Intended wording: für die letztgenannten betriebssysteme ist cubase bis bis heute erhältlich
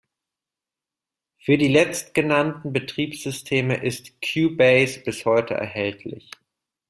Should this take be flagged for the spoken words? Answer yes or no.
yes